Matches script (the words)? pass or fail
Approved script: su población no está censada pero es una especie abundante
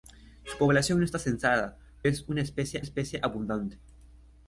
fail